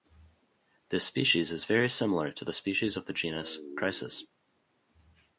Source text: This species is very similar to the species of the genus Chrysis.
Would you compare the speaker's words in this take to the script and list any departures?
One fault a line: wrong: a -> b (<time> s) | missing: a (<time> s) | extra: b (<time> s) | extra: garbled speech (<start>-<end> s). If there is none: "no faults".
no faults